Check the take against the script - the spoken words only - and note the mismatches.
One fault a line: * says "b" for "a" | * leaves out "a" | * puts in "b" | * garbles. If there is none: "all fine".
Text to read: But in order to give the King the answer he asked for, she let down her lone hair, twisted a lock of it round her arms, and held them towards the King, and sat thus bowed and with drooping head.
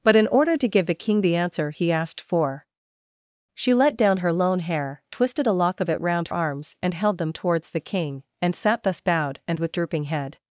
* leaves out "her"